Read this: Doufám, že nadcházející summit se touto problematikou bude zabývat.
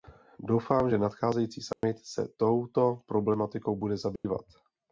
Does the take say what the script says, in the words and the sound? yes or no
no